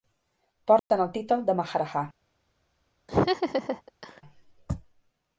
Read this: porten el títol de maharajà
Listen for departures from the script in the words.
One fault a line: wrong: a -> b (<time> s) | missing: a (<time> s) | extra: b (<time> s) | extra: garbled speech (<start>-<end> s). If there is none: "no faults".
no faults